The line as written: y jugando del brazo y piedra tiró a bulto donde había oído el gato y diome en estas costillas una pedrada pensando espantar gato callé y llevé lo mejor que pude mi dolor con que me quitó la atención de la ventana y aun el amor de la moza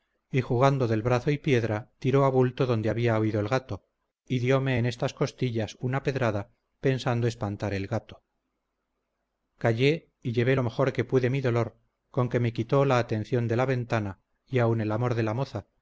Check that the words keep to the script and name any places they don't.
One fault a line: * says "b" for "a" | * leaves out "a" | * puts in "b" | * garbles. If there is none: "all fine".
* puts in "el"